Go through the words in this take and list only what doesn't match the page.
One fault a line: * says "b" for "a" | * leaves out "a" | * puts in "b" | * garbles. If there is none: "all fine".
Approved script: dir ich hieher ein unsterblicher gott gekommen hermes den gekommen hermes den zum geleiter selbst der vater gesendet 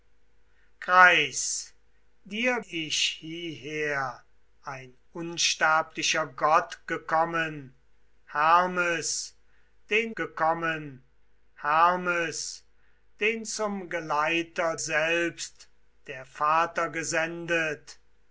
all fine